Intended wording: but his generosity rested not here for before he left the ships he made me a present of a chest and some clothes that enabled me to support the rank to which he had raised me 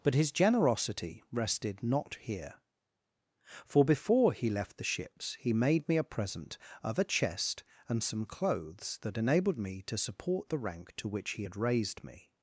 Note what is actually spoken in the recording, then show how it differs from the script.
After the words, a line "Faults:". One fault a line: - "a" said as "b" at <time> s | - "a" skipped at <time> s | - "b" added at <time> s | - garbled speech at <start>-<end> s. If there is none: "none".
but his generosity rested not here for before he left the ships he made me a present of a chest and some clothes that enabled me to support the rank to which he had raised me
Faults:
none